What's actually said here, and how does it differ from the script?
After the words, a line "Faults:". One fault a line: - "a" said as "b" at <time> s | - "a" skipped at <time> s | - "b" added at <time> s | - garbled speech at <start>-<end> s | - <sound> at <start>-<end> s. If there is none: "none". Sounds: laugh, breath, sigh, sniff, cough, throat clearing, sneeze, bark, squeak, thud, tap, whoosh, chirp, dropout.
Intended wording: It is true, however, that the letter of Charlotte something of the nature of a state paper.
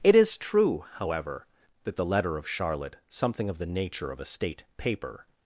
It is true, however, that the letter of Charlotte something of the nature of a state paper.
Faults:
none